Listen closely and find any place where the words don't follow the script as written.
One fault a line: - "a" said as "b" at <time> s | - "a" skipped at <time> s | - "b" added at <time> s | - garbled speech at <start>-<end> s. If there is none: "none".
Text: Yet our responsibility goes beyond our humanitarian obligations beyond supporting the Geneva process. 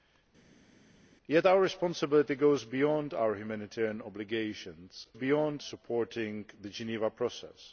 none